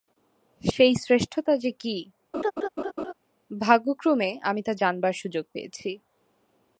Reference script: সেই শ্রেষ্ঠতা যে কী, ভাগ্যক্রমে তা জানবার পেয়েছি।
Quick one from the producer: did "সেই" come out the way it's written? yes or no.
yes